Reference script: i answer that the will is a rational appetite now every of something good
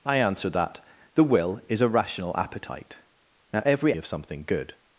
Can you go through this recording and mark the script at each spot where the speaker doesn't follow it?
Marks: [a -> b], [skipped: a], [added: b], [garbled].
i answer that the will is a rational appetite now every of something good